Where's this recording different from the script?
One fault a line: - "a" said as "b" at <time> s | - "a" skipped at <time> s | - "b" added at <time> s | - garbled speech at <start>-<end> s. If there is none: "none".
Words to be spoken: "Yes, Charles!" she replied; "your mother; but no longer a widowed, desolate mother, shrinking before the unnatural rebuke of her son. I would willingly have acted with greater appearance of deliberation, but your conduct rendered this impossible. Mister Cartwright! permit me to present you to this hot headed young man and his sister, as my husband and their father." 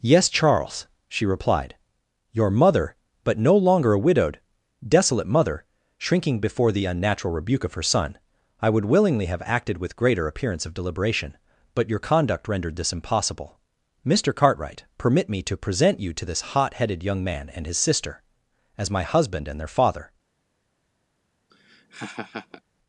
none